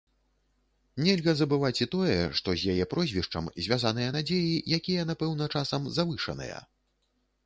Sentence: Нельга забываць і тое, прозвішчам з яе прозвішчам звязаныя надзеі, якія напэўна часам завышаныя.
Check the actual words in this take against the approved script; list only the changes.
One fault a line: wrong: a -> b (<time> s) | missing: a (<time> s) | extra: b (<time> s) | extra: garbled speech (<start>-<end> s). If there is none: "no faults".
wrong: прозвішчам -> што (2.4 s)